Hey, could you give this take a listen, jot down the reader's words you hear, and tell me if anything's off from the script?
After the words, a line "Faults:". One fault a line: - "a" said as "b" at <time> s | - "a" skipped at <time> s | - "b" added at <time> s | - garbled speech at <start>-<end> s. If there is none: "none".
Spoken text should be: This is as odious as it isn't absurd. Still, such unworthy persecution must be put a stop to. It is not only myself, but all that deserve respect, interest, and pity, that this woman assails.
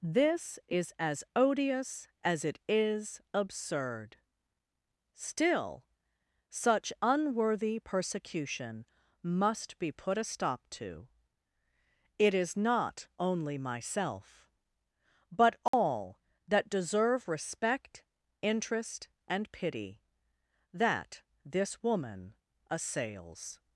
This is as odious as it is absurd. Still, such unworthy persecution must be put a stop to. It is not only myself, but all that deserve respect, interest, and pity, that this woman assails.
Faults:
- "isn't" said as "is" at 2.7 s